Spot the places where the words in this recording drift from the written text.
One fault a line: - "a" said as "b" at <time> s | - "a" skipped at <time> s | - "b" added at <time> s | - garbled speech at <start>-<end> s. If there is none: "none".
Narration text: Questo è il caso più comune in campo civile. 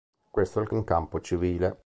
- "caso più comune" skipped at 0.7 s